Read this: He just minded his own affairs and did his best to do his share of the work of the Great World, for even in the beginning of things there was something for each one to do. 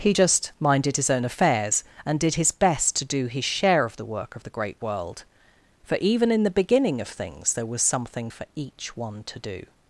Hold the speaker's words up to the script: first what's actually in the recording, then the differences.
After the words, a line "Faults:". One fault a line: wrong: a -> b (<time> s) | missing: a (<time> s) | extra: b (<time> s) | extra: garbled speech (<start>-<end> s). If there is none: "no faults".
He just minded his own affairs and did his best to do his share of the work of the Great World, for even in the beginning of things there was something for each one to do.
Faults:
no faults